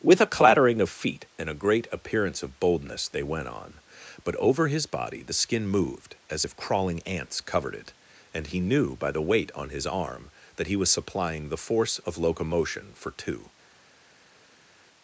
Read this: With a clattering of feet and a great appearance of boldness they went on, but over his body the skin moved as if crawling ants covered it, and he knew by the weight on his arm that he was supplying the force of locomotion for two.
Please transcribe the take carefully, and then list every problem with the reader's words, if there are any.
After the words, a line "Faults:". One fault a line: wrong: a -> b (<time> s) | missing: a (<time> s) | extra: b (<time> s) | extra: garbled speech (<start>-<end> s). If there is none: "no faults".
With a clattering of feet and a great appearance of boldness they went on, but over his body the skin moved as if crawling ants covered it, and he knew by the weight on his arm that he was supplying the force of locomotion for two.
Faults:
no faults